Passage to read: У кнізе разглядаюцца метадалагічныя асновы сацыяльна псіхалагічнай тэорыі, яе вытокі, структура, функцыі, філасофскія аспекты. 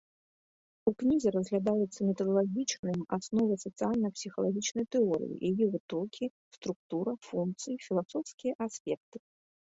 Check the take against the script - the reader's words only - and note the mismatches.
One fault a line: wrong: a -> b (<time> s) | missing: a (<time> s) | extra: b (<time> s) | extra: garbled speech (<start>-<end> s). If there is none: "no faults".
no faults